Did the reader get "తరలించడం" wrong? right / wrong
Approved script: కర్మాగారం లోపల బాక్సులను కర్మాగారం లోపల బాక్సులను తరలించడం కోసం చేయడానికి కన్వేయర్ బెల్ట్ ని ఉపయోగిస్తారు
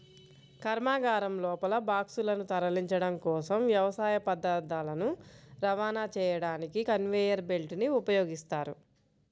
wrong